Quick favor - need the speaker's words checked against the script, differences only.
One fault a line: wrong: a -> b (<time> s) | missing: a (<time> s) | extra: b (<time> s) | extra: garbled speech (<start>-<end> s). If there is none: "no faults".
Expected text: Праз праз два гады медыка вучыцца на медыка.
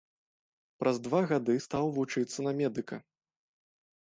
missing: праз (1.0 s)
wrong: медыка -> стаў (1.6 s)